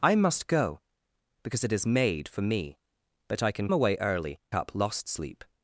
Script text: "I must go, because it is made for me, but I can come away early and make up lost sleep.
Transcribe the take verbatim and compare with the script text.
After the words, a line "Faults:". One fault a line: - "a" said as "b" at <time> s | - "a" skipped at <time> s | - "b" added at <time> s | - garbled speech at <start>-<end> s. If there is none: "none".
"I must go, because it is made for me, but I can away early up lost sleep.
Faults:
- "come" skipped at 3.7 s
- "and make" skipped at 4.4 s